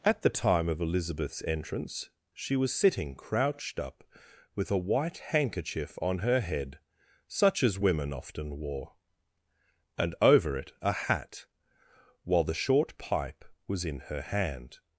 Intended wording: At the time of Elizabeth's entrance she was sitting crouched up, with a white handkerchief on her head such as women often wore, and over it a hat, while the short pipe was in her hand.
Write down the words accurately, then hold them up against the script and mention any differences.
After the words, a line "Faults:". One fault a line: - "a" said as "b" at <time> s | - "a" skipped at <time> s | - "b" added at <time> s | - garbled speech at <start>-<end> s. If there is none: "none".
At the time of Elizabeth's entrance she was sitting crouched up, with a white handkerchief on her head such as women often wore, and over it a hat, while the short pipe was in her hand.
Faults:
none